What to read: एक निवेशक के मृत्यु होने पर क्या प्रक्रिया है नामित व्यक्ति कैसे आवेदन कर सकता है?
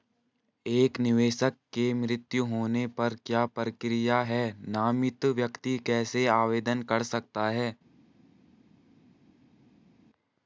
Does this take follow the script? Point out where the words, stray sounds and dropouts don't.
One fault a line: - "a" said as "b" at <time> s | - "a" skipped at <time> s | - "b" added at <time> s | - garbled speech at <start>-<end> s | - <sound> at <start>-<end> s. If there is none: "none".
none